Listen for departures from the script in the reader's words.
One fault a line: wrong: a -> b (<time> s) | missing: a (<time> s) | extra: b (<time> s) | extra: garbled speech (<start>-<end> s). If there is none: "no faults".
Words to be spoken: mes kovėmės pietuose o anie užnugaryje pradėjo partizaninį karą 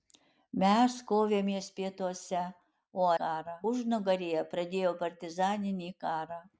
wrong: anie -> karą (3.2 s)